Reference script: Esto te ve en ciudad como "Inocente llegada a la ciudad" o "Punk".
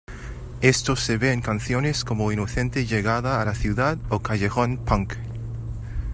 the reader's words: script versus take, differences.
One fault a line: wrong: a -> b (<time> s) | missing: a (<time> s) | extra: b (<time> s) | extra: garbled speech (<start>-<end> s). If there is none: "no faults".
wrong: te -> se (0.9 s)
wrong: ciudad -> canciones (1.4 s)
extra: Callejón (4.2 s)